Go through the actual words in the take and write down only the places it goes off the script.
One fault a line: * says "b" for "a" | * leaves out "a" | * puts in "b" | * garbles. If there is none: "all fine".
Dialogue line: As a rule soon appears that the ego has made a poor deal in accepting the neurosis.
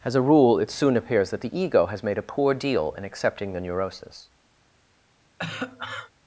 * puts in "it"